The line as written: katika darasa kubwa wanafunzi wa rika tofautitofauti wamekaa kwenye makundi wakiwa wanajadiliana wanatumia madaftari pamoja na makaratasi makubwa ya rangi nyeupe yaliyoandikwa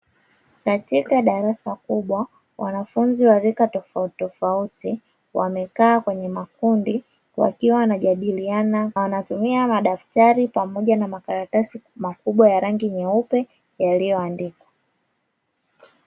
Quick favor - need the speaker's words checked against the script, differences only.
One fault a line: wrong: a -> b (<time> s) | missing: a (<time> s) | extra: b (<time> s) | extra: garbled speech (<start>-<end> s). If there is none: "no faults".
no faults